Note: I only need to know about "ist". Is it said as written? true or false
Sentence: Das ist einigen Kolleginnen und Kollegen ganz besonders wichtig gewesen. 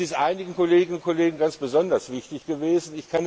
true